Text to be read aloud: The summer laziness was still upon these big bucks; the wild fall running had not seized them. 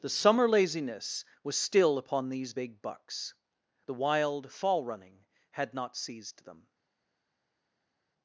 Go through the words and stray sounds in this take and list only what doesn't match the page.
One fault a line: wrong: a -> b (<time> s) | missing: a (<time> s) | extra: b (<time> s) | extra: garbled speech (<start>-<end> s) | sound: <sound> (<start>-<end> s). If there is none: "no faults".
no faults